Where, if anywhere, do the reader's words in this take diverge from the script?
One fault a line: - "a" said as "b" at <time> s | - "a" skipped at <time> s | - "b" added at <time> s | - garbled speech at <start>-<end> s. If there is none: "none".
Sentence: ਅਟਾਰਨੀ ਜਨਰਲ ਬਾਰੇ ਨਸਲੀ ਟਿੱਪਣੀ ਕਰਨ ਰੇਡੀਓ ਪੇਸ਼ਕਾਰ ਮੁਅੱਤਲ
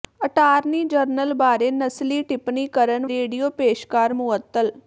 none